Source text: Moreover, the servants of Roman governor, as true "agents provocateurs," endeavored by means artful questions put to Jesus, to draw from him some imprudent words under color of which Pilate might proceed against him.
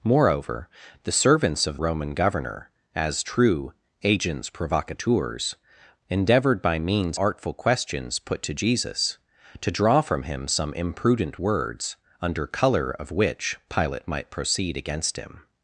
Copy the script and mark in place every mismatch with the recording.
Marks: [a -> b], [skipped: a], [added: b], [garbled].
Moreover, the servants of Roman governor, as true "agents provocateurs," endeavored by means artful questions put to Jesus, to draw from him some imprudent words under color of which Pilate might proceed against him.